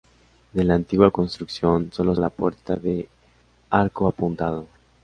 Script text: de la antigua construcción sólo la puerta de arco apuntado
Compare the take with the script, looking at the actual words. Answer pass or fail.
pass